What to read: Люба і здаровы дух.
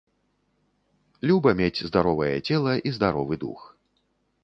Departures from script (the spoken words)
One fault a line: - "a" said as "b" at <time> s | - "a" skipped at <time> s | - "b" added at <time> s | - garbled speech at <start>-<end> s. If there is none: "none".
- "мець здаровае цела" added at 1.6 s